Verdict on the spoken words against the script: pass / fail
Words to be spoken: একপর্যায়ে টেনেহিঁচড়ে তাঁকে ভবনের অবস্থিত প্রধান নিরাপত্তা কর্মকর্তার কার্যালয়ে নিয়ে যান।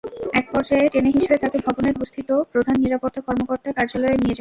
pass